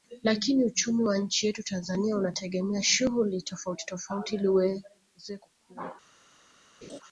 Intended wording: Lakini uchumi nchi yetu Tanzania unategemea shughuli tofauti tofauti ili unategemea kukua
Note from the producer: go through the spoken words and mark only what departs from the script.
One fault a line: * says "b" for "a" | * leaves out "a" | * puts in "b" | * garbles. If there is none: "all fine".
* puts in "wa"
* says "uweze" for "unategemea"